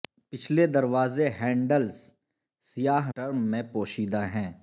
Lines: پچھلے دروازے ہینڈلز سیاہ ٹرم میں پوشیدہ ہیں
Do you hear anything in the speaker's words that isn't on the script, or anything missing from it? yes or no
no